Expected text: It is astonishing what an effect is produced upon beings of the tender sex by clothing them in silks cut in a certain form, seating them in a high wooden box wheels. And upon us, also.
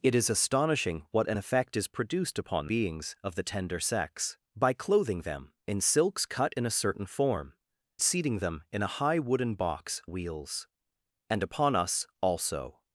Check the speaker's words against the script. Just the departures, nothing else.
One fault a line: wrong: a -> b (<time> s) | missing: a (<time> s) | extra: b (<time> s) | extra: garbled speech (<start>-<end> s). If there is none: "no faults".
no faults